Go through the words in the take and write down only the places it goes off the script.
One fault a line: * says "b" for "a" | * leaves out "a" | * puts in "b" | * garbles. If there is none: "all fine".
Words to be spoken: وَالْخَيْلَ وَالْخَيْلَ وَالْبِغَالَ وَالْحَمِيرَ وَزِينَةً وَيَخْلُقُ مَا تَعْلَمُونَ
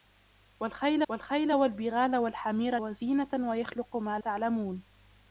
all fine